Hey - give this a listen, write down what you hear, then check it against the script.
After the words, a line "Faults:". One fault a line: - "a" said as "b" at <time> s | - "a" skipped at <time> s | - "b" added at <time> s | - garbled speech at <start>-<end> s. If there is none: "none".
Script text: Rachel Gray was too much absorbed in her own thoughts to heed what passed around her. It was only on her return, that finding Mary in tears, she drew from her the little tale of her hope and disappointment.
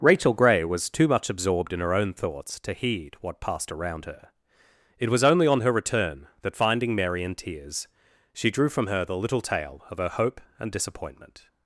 Rachel Gray was too much absorbed in her own thoughts to heed what passed around her. It was only on her return, that finding Mary in tears, she drew from her the little tale of her hope and disappointment.
Faults:
none